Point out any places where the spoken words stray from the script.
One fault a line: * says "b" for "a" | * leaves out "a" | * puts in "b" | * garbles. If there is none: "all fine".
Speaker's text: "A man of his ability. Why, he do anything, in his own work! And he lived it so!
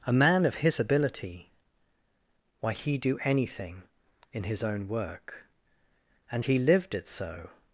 all fine